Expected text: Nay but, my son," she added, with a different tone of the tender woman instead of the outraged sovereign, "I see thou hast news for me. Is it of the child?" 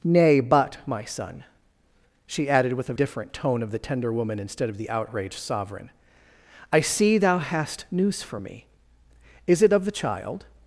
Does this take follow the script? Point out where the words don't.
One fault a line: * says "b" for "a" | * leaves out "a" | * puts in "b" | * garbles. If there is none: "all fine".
all fine